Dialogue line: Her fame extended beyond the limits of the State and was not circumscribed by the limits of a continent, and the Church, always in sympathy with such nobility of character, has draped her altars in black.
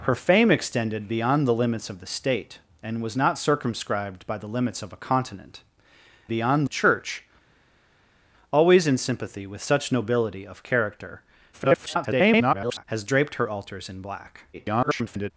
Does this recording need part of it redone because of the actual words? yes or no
yes